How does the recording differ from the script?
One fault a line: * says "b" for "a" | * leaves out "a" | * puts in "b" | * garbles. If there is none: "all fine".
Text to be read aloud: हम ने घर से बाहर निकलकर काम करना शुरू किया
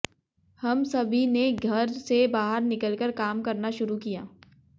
* puts in "सभी"